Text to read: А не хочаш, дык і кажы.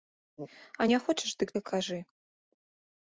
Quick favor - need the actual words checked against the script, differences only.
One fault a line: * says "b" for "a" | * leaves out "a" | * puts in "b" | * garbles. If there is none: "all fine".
all fine